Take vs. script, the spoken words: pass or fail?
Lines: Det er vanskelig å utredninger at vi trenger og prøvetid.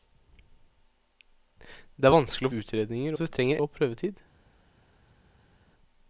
pass